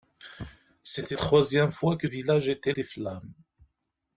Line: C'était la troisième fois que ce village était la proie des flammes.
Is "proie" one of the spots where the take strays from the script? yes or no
yes